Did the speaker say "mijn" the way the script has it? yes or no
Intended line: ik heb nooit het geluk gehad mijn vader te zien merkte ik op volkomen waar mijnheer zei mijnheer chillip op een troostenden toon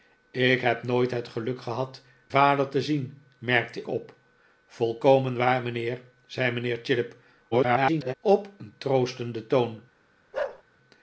no